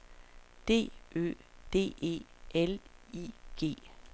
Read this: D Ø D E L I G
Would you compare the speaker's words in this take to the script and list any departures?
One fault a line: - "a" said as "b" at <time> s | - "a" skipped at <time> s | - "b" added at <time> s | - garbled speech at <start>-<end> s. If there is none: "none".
none